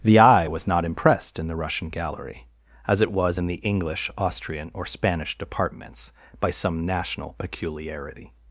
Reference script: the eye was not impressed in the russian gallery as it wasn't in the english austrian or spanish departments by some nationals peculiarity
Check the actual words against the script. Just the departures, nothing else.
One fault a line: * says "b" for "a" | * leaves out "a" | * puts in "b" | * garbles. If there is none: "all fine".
* says "was" for "wasn't"
* says "national" for "nationals"